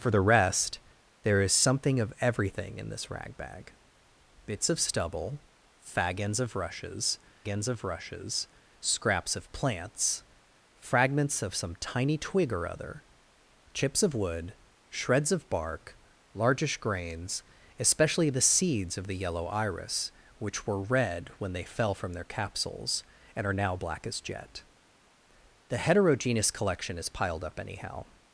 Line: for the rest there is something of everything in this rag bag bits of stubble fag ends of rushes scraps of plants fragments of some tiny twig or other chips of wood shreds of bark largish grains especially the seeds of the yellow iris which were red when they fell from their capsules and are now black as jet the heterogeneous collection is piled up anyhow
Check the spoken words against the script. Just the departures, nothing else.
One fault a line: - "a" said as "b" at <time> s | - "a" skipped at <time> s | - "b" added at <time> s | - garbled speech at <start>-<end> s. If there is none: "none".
- "ends of rushes" added at 7.5 s